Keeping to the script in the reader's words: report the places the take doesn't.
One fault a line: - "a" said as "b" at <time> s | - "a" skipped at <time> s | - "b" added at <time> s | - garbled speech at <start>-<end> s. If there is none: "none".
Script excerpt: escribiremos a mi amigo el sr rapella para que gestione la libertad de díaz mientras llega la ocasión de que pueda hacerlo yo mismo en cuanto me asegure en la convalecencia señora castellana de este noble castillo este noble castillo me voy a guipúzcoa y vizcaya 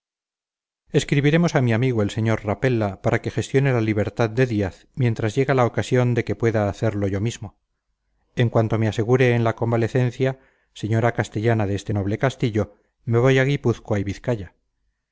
- "este noble castillo" skipped at 12.8 s